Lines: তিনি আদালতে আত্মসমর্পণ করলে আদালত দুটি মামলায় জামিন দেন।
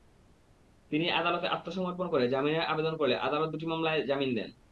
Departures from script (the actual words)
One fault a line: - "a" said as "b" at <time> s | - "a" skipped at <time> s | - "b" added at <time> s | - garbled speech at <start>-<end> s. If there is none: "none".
- "করে জামিনের আবেদন" added at 2.1 s